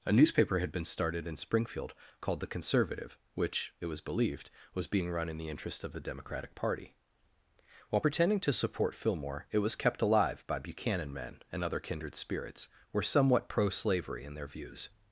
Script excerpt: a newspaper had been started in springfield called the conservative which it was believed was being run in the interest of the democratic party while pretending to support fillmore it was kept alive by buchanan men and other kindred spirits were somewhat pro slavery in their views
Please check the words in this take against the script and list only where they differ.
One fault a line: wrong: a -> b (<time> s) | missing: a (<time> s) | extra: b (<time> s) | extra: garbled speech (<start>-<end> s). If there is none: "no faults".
no faults